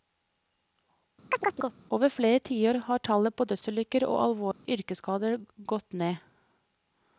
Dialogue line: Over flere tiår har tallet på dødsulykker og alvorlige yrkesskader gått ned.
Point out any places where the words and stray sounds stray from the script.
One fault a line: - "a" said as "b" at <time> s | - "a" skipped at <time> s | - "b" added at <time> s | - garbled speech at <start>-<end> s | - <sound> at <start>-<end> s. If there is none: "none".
- chirp at 1.3-1.8 s
- dropout at 4.5-4.7 s